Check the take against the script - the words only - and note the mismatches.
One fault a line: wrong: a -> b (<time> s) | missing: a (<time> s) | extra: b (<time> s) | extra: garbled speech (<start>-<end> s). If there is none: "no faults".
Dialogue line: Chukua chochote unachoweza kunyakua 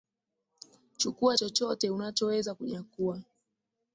no faults